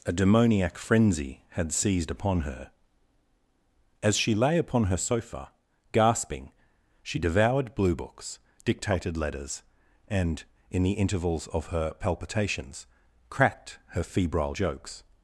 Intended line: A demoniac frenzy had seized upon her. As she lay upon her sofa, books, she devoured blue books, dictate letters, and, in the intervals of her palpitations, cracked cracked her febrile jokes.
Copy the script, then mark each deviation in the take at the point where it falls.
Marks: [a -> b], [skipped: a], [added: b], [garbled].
A demoniac frenzy had seized upon her. As she lay upon her sofa, [books, -> gasping] she devoured blue books, [dictate -> dictated] letters, and, in the intervals of her palpitations, cracked [skipped: cracked] her febrile jokes.